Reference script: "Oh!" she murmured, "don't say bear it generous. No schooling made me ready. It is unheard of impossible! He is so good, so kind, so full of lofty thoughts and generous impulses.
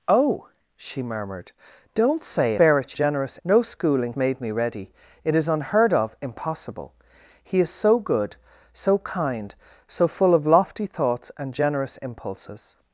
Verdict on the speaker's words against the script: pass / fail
pass